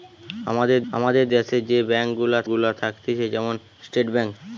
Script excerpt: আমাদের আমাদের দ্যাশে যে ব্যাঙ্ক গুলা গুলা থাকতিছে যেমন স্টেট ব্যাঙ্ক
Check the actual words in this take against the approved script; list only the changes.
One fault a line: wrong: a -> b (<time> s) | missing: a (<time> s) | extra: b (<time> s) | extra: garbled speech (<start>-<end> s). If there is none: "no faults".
no faults